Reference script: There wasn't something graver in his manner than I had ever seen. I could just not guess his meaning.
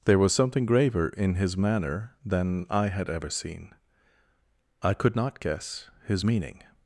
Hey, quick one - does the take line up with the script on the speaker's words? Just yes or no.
no